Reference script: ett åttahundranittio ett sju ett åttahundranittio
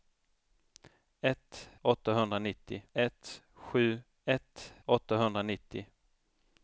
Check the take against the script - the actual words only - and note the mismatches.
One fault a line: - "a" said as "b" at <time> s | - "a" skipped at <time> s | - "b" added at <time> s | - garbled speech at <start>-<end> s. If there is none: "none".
none